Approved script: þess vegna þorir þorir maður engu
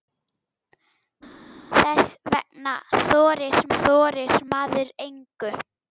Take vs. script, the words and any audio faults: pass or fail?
pass